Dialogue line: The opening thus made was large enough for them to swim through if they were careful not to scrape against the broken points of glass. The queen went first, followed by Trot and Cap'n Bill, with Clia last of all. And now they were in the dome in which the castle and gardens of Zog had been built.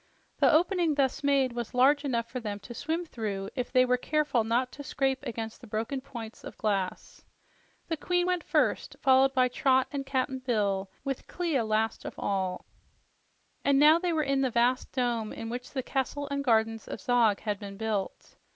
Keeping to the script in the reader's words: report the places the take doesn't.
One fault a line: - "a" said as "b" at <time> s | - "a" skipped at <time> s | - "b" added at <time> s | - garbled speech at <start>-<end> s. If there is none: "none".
- "vast" added at 14.5 s